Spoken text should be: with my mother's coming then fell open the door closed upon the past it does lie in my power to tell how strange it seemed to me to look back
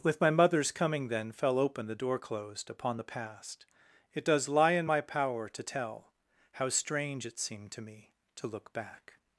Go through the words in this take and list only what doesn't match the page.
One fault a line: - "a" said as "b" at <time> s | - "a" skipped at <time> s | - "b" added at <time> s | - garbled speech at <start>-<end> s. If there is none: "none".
none